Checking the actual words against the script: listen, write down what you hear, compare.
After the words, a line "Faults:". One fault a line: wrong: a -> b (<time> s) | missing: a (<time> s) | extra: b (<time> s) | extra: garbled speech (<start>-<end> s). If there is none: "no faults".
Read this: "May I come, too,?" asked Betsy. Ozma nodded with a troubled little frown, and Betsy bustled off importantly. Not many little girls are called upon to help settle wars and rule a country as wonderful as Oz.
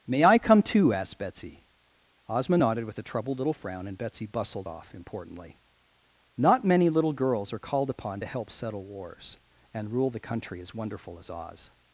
"May I come, too,?" asked Betsy. Ozma nodded with a troubled little frown, and Betsy bustled off importantly. Not many little girls are called upon to help settle wars and rule the country as wonderful as Oz.
Faults:
wrong: a -> the (10.1 s)